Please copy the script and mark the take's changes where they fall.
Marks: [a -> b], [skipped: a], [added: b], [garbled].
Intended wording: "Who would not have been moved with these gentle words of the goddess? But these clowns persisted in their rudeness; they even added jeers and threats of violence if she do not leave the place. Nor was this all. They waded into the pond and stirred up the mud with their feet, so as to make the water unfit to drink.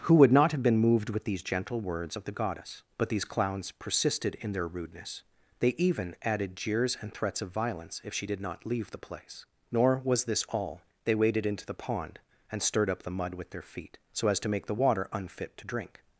"Who would not have been moved with these gentle words of the goddess? But these clowns persisted in their rudeness; they even added jeers and threats of violence if she [do -> did] not leave the place. Nor was this all. They waded into the pond and stirred up the mud with their feet, so as to make the water unfit to drink.